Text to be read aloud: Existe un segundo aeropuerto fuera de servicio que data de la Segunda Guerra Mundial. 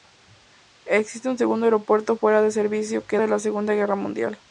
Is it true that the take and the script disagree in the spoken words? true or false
true